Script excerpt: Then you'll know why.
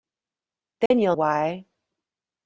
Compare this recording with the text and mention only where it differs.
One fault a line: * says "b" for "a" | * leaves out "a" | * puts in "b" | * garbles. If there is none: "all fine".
* leaves out "know"